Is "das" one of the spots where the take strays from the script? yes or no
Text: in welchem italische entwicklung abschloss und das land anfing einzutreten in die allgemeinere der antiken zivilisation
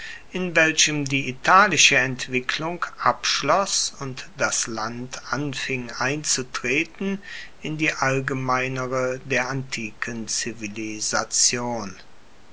no